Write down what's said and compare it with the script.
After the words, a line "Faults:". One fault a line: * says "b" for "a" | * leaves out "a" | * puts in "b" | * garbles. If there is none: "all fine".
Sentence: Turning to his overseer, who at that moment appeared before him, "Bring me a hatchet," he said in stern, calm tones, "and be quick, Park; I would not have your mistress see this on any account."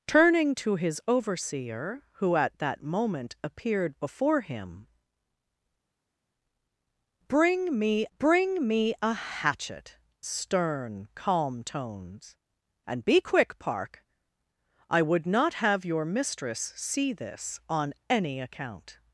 Turning to his overseer, who at that moment appeared before him, "Bring me bring me a hatchet," stern, calm tones, "and be quick, Park; I would not have your mistress see this on any account."
Faults:
* puts in "bring me"
* leaves out "he said in"